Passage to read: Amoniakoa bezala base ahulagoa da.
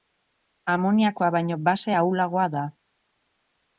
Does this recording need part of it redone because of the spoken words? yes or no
yes